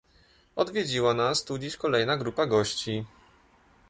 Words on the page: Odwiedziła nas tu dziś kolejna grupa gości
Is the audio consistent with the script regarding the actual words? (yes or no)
yes